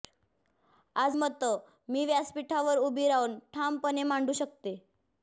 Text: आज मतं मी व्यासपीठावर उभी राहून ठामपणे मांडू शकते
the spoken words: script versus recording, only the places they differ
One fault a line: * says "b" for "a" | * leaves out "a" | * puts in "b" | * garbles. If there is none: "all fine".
all fine